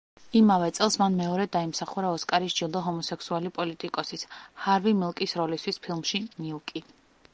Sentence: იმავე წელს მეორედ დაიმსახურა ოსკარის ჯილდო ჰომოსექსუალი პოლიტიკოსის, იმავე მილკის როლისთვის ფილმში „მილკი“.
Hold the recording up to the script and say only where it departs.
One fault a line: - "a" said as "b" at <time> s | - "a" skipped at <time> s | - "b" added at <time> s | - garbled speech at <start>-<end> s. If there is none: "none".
- "მან" added at 1.0 s
- "იმავე" said as "ჰარვი" at 4.7 s